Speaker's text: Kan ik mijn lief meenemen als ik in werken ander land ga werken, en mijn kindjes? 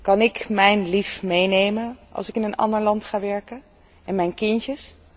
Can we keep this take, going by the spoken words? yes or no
no